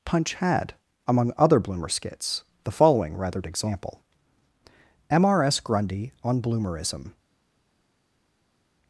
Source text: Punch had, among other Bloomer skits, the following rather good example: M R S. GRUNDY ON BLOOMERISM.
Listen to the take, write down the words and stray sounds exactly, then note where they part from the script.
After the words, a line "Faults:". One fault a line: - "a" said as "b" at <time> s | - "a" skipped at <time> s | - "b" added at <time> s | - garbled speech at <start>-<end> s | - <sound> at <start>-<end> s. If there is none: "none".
Punch had, among other Bloomer skits, the following rather example: M R S. GRUNDY ON BLOOMERISM.
Faults:
- "good" skipped at 3.4 s